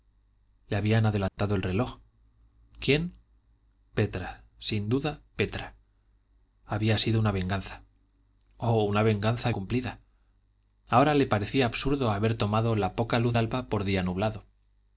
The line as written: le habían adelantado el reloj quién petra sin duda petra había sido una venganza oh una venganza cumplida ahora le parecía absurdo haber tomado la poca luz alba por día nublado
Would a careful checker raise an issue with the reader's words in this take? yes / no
no